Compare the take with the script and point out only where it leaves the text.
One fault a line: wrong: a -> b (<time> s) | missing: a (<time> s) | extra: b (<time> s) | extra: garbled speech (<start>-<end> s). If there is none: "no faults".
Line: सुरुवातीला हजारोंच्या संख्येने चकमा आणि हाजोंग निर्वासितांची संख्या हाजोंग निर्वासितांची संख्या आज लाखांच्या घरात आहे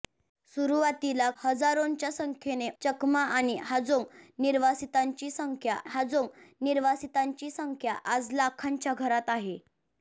no faults